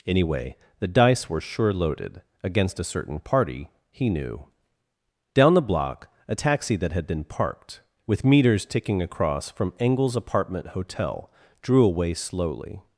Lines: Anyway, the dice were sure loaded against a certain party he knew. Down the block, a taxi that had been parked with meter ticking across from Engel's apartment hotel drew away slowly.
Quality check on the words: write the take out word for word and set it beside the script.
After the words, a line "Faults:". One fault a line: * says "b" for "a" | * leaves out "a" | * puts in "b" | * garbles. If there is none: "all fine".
Anyway, the dice were sure loaded against a certain party he knew. Down the block, a taxi that had been parked with meters ticking across from Engel's apartment hotel drew away slowly.
Faults:
* says "meters" for "meter"